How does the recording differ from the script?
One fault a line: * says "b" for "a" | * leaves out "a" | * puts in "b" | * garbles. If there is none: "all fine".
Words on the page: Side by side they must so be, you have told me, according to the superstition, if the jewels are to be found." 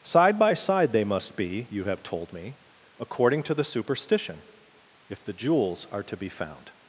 * leaves out "so"